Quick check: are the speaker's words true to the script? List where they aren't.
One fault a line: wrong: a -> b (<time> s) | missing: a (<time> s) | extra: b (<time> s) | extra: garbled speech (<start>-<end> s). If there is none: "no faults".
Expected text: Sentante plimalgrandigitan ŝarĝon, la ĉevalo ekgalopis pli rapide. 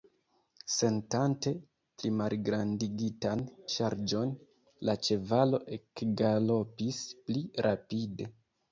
no faults